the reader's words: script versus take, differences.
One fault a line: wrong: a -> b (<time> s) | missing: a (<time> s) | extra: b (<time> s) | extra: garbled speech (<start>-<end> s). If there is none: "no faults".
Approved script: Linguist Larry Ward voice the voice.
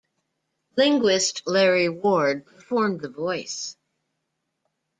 wrong: voice -> performed (2.5 s)